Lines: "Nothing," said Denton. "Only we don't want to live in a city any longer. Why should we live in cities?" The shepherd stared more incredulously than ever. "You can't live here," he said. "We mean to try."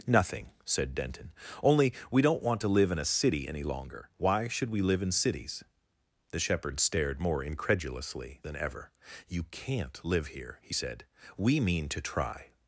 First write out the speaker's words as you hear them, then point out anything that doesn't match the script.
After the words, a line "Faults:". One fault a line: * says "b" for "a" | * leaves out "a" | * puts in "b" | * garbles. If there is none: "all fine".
"Nothing," said Denton. "Only we don't want to live in a city any longer. Why should we live in cities?" The shepherd stared more incredulously than ever. "You can't live here," he said. "We mean to try."
Faults:
all fine